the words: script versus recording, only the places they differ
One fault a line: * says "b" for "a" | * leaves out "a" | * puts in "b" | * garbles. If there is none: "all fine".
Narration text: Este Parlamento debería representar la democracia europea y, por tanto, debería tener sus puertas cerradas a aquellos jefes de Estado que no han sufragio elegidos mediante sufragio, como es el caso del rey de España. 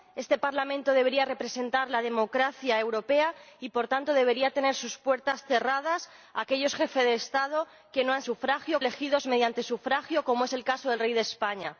all fine